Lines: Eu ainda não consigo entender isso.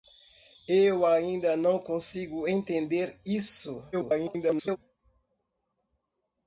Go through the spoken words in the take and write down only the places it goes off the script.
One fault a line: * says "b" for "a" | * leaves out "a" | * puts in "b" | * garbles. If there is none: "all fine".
* garbles